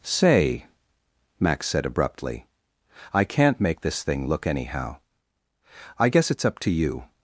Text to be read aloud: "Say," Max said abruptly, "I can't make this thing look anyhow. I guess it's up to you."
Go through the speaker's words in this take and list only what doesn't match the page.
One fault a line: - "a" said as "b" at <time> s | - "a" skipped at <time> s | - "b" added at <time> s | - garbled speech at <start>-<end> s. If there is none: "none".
none